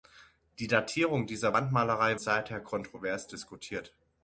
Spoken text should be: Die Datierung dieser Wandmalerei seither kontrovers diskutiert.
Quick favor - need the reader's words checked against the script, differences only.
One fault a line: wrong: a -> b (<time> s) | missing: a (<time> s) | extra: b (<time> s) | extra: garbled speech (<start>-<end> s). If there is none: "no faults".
no faults